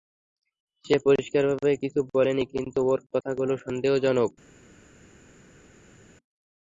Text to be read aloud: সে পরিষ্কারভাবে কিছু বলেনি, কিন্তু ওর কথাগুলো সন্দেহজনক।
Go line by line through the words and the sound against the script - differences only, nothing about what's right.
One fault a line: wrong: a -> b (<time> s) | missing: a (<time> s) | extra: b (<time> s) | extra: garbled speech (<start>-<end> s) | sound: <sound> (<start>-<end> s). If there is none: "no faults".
no faults